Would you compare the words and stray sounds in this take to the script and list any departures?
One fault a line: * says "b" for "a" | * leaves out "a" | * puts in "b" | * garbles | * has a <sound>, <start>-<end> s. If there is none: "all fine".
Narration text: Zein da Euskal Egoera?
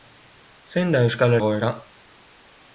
all fine